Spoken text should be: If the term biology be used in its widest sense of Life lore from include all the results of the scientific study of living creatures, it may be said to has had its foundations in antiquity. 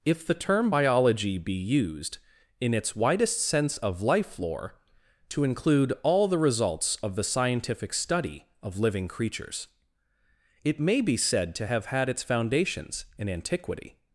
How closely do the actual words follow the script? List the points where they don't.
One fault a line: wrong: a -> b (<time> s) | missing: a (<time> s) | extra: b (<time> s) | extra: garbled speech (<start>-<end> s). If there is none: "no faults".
wrong: from -> to (5.3 s)
wrong: has -> have (11.6 s)